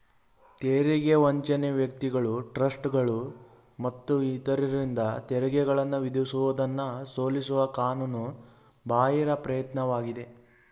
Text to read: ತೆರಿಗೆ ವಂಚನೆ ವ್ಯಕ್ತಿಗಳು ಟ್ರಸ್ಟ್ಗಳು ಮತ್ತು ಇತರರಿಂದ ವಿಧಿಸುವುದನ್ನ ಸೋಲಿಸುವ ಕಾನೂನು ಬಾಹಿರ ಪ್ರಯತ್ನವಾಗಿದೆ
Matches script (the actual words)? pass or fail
fail